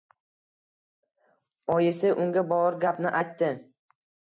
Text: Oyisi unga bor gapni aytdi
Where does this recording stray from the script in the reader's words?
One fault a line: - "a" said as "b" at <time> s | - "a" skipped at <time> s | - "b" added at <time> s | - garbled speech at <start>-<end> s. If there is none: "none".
none